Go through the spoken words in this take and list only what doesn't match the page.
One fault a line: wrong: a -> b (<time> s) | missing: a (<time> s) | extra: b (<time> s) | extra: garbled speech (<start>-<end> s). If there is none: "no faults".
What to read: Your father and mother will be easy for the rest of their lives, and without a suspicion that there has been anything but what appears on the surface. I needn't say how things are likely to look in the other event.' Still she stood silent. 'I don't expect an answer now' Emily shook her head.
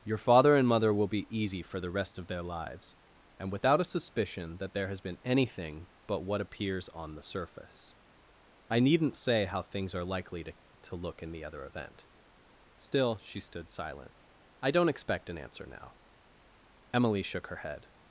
extra: to (10.8 s)